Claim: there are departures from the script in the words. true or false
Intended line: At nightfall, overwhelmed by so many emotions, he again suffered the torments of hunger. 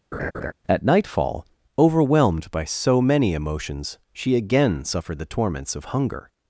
true